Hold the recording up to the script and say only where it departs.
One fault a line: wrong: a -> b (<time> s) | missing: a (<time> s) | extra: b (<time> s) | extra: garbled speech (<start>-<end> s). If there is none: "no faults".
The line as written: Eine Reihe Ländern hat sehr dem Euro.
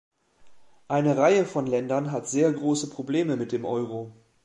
extra: von (1.4 s)
extra: große Probleme mit (2.5 s)